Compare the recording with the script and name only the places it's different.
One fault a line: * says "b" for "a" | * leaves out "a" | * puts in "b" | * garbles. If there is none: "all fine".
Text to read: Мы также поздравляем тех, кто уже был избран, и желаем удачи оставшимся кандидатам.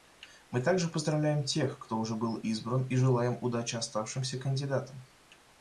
all fine